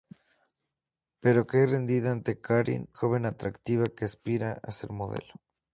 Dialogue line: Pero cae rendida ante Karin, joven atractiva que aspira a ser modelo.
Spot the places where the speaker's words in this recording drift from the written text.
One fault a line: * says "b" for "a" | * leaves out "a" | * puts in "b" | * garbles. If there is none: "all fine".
all fine